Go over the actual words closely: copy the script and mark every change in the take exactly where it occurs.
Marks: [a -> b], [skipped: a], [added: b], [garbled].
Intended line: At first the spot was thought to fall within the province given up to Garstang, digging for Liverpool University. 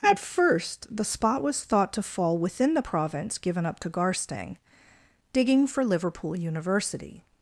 At first the spot was thought to fall within the province given up to Garstang, digging for Liverpool University.